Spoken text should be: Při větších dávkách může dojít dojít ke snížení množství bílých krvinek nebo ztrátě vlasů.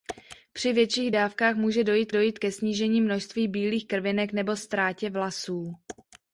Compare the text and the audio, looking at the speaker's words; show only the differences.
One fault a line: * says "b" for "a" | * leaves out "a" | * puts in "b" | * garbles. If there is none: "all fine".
all fine